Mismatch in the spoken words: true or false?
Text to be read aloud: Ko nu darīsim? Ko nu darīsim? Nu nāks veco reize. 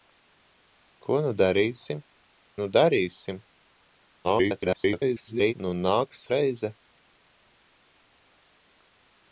true